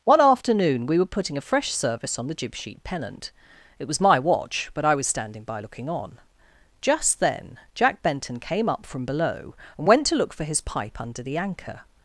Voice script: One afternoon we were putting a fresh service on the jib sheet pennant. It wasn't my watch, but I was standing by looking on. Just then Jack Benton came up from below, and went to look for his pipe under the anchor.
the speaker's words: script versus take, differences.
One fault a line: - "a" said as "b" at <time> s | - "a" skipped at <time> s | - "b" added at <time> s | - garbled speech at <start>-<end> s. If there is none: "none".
- "wasn't" said as "was" at 3.9 s